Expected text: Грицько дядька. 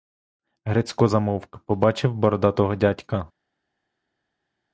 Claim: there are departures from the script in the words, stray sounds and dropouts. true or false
true